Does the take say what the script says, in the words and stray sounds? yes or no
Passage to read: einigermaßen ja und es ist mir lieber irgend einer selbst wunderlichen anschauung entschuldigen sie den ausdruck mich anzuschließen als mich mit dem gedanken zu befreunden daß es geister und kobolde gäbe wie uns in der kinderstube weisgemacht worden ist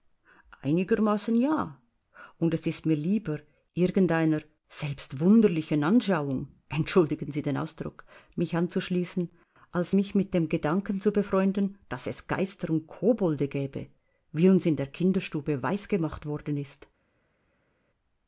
yes